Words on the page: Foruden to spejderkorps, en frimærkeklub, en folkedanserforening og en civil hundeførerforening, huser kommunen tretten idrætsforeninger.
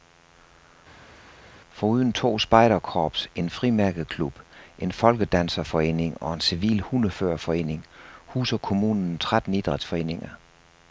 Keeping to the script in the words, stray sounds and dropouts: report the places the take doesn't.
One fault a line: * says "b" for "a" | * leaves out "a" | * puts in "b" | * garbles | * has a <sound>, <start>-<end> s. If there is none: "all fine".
all fine